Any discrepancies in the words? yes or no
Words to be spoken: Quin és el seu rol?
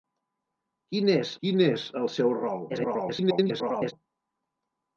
yes